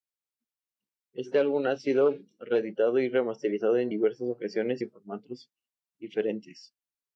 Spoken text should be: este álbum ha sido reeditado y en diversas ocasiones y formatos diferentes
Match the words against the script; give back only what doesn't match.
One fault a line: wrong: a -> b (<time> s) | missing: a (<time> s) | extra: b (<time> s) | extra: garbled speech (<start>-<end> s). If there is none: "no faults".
extra: remasterizado (3.1 s)